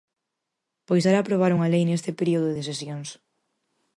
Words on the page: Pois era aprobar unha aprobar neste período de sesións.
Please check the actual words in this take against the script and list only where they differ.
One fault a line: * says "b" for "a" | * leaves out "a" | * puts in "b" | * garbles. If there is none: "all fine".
* says "lei" for "aprobar"